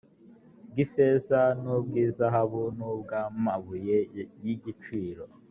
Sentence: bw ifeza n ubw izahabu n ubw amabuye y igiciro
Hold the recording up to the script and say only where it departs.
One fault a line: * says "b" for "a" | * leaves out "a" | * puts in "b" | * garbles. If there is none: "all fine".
all fine